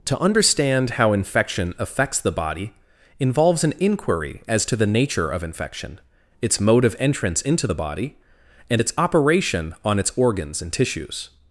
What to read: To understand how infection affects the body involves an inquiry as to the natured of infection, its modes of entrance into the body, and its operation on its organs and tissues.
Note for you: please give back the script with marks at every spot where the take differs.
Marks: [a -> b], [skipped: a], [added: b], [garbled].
To understand how infection affects the body involves an inquiry as to the [natured -> nature] of infection, its [modes -> mode] of entrance into the body, and its operation on its organs and tissues.